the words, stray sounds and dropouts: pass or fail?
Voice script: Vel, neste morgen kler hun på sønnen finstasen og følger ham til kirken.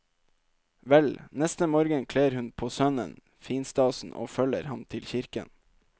pass